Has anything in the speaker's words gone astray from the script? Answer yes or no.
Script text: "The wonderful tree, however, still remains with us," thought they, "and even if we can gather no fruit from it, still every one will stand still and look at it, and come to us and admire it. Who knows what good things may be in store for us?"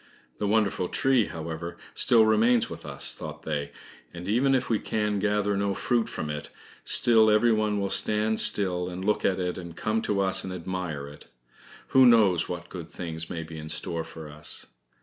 no